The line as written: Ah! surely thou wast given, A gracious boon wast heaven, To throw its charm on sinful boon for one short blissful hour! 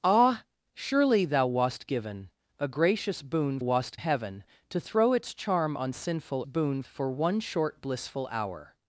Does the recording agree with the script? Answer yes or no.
yes